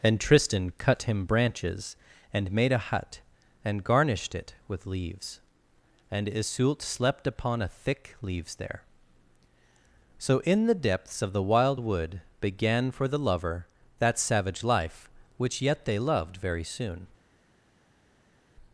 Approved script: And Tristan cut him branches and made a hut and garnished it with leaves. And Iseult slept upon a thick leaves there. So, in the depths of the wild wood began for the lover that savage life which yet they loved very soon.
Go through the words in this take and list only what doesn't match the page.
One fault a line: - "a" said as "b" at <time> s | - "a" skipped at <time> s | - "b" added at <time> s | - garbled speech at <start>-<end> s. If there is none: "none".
none